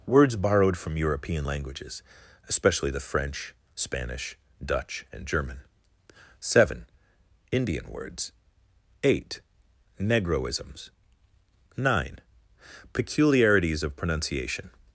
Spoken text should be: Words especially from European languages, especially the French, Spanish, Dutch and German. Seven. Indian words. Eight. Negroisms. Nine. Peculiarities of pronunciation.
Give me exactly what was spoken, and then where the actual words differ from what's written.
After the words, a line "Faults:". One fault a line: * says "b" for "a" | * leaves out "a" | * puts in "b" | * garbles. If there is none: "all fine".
Words borrowed from European languages, especially the French, Spanish, Dutch and German. Seven. Indian words. Eight. Negroisms. Nine. Peculiarities of pronunciation.
Faults:
* says "borrowed" for "especially"